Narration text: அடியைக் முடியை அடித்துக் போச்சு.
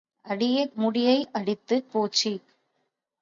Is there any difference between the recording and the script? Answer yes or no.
no